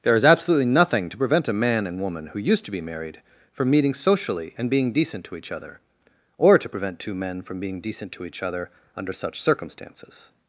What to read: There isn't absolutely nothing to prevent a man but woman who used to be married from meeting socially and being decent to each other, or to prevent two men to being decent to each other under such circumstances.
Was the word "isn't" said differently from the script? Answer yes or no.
yes